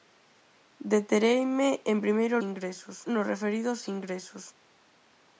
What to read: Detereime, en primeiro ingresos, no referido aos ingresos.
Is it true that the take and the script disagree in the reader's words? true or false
false